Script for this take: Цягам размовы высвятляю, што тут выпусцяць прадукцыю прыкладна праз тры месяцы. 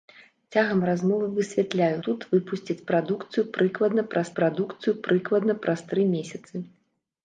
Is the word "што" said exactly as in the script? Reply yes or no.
no